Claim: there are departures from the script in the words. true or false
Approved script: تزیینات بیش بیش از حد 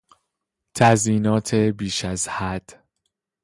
true